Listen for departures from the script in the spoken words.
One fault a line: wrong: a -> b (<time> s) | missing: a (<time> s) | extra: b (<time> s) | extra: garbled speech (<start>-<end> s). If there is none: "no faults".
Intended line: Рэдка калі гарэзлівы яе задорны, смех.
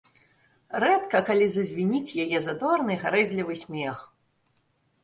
wrong: гарэзлівы -> зазвініць (1.5 s)
extra: гарэзлівы (3.0 s)